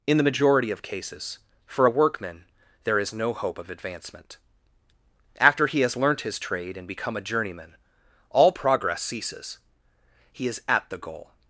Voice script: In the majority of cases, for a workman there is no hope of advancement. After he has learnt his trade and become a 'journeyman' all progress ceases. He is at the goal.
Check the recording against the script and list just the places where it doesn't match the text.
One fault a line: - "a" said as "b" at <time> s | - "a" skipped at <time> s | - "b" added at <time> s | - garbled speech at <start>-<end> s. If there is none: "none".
none